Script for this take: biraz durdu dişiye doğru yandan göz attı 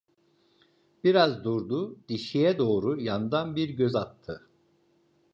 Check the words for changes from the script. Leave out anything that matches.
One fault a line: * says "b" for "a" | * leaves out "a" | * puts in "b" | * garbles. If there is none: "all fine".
* puts in "bir"